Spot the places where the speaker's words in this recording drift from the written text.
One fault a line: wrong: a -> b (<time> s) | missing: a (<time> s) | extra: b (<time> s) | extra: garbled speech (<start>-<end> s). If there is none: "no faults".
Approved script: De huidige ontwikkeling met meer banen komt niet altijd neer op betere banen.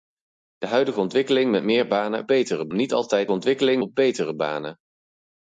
wrong: komt -> betere (2.3 s)
wrong: neer -> ontwikkeling (3.3 s)